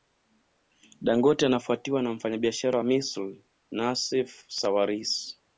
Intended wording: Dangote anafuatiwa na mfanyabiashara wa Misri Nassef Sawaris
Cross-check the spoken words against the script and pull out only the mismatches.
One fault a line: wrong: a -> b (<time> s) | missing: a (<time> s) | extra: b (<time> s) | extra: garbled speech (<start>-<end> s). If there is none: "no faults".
no faults